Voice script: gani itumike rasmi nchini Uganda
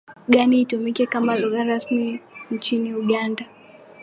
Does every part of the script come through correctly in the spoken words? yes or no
no